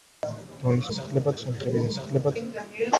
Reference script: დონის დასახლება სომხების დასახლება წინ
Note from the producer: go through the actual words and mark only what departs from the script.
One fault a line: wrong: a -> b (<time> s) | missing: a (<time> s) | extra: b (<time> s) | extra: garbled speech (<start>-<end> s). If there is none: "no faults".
no faults